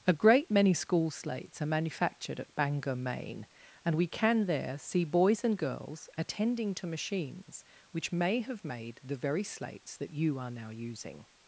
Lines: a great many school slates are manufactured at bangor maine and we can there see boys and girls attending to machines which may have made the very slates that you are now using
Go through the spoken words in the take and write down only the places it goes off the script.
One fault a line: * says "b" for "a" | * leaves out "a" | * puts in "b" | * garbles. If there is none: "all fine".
all fine